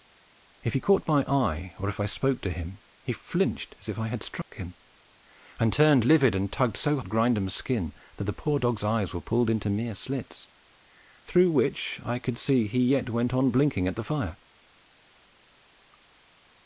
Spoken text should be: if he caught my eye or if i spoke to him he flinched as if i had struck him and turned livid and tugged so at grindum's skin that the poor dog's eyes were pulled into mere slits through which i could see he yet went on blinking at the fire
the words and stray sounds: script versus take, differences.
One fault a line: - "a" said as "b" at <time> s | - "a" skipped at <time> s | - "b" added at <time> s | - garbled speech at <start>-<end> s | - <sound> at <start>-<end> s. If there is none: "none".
- dropout at 4.4-4.5 s